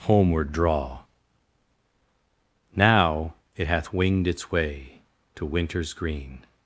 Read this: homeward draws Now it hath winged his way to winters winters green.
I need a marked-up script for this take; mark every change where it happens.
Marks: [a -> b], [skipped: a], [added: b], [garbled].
homeward [draws -> draw] Now it hath winged [his -> its] way to winters [skipped: winters] green.